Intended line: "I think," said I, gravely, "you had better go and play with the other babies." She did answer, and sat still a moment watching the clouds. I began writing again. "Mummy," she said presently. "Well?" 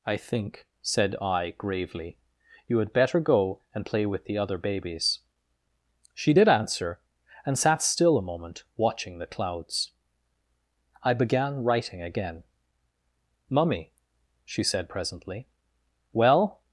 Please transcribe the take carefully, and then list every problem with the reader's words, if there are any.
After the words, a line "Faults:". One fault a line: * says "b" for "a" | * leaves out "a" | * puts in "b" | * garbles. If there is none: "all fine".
"I think," said I, gravely, "you had better go and play with the other babies." She did answer, and sat still a moment watching the clouds. I began writing again. "Mummy," she said presently. "Well?"
Faults:
all fine